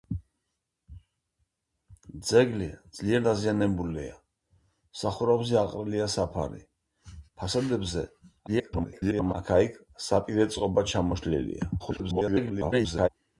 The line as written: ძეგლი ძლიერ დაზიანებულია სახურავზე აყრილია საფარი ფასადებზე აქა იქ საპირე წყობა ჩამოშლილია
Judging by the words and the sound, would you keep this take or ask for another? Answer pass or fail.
fail